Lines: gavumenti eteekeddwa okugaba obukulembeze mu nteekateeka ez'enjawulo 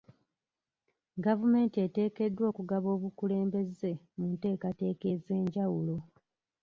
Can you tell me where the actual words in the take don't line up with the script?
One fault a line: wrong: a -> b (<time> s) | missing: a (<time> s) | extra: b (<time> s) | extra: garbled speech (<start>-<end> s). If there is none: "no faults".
no faults